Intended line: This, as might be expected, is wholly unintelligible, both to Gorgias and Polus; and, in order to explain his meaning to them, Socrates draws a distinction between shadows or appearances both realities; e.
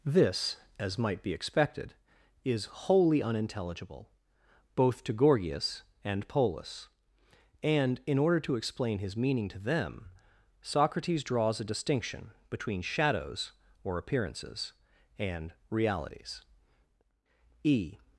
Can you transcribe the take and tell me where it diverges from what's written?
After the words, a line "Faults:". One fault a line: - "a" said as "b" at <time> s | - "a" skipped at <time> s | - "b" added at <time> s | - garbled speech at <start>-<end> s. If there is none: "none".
This, as might be expected, is wholly unintelligible, both to Gorgias and Polus; and, in order to explain his meaning to them, Socrates draws a distinction between shadows or appearances and realities; e.
Faults:
- "both" said as "and" at 15.2 s